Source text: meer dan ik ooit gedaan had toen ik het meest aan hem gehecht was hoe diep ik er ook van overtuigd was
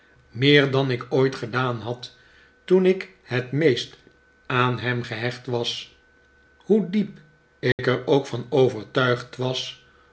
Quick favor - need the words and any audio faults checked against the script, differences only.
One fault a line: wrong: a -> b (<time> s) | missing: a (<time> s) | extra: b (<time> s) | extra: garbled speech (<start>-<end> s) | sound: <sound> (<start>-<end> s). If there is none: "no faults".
sound: dropout (7.7-7.8 s)